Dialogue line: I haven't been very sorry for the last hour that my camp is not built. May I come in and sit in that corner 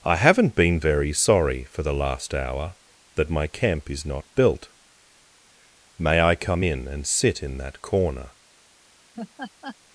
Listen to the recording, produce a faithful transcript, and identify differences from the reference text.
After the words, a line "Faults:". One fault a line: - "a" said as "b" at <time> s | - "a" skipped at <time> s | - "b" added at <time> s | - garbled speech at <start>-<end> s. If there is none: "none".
I haven't been very sorry for the last hour that my camp is not built. May I come in and sit in that corner
Faults:
none